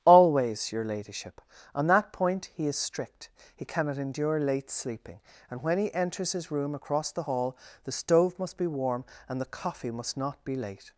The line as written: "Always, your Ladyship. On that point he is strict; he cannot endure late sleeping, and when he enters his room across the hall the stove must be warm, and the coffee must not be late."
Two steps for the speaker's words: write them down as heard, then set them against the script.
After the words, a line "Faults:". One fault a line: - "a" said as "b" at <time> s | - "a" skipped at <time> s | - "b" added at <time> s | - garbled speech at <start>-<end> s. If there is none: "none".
"Always, your Ladyship. On that point he is strict; he cannot endure late sleeping, and when he enters his room across the hall the stove must be warm, and the coffee must not be late."
Faults:
none